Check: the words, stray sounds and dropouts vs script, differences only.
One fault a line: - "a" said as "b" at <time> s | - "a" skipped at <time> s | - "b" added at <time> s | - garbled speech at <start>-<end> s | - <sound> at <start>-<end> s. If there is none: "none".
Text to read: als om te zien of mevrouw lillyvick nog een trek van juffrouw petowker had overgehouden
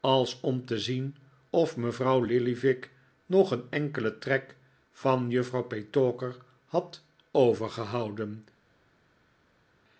- "enkelen" added at 3.7 s